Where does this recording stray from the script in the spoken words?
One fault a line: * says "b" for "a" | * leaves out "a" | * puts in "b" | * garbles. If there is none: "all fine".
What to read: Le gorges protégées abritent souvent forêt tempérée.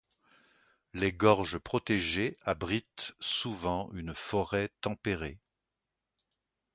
* says "Les" for "Le"
* puts in "une"